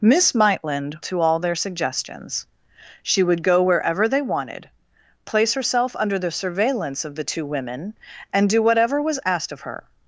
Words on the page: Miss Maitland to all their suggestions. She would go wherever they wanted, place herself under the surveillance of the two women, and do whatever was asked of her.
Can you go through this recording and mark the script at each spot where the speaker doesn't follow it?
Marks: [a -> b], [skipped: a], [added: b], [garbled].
Miss Maitland to all their suggestions. She would go wherever they wanted, place herself under the surveillance of the two women, and do whatever was asked of her.